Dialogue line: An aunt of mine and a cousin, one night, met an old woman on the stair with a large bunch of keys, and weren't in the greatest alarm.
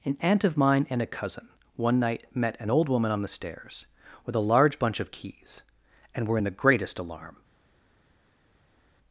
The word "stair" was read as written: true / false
false